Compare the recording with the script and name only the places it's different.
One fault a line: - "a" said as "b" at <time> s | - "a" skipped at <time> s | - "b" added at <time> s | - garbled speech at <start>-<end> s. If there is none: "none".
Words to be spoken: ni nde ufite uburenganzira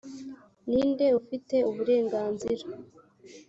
none